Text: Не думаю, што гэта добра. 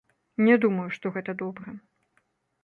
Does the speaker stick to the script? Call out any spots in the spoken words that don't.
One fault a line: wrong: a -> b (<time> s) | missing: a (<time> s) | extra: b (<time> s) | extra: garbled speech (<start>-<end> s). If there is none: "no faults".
no faults